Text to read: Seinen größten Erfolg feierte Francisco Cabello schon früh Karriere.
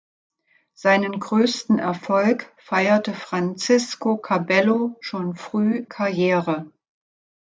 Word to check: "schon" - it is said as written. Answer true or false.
true